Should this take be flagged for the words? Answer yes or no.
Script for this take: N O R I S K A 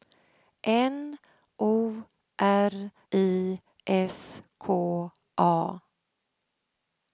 no